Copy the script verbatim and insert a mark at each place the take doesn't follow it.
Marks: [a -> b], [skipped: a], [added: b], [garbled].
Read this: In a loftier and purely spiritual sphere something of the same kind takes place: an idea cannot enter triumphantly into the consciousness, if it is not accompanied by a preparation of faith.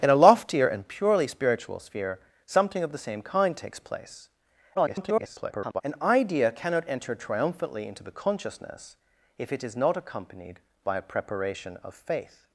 In a loftier and purely spiritual sphere something of the same kind takes place: [garbled] an idea cannot enter triumphantly into the consciousness, if it is not accompanied by a preparation of faith.